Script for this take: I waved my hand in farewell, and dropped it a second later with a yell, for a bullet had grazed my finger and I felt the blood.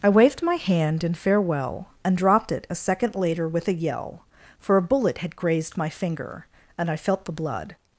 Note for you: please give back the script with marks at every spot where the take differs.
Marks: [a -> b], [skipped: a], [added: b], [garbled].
I waved my hand in farewell, and dropped it a second later with a yell, for a bullet had grazed my finger and I felt the blood.